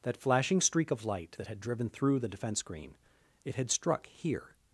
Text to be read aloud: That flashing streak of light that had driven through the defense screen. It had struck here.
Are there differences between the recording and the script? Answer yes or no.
no